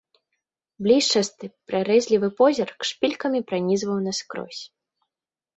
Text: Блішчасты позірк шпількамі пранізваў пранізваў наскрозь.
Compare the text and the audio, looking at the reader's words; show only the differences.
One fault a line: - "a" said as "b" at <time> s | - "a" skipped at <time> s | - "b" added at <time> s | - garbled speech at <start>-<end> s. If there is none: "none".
- "прарэзлівы" added at 1.7 s
- "пранізваў" skipped at 4.0 s